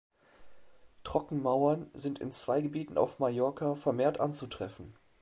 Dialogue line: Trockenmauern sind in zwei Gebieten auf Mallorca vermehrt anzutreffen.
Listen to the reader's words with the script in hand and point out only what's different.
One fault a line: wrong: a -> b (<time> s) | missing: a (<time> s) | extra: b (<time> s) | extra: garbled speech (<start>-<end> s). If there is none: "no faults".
no faults